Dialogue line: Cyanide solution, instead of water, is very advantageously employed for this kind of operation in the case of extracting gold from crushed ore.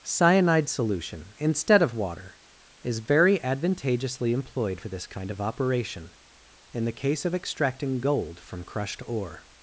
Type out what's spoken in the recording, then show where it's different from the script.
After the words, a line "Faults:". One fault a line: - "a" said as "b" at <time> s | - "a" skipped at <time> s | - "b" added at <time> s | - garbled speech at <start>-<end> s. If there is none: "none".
Cyanide solution, instead of water, is very advantageously employed for this kind of operation in the case of extracting gold from crushed ore.
Faults:
none